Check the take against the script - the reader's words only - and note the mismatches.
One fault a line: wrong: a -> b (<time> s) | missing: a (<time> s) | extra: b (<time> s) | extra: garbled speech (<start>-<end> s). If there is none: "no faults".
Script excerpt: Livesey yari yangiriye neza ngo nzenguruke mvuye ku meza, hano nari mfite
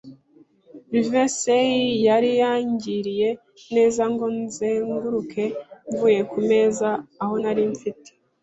wrong: hano -> aho (7.2 s)